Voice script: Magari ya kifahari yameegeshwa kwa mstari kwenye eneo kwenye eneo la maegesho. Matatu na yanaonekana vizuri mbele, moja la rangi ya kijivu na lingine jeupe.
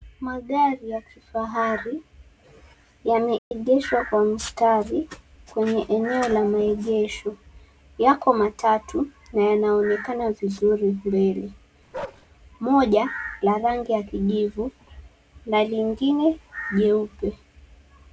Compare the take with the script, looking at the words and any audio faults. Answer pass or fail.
fail